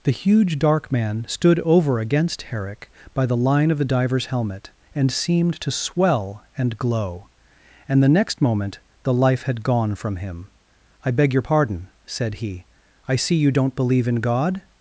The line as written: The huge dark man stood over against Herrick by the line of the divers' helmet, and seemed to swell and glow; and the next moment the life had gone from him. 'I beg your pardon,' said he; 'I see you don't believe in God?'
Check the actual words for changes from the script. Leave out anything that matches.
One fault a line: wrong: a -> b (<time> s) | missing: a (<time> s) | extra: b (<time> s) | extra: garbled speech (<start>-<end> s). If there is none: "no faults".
no faults